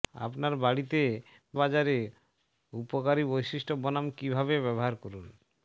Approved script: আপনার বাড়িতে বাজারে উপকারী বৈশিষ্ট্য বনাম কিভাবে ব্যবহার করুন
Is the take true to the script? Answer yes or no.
yes